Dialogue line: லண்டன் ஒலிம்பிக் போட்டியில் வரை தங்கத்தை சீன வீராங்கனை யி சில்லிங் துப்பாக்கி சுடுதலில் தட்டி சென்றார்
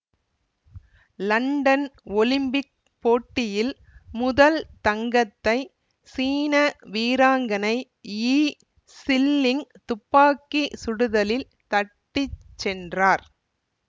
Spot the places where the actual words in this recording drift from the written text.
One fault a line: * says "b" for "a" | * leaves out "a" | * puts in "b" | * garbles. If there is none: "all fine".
* says "முதல்" for "வரை"